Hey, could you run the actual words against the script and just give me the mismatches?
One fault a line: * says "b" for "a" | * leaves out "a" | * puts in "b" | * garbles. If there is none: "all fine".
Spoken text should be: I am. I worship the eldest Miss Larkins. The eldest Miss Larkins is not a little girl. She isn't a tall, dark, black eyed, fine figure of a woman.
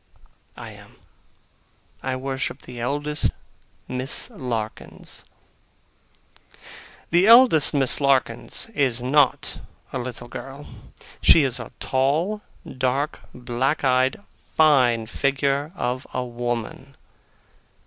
* says "is" for "isn't"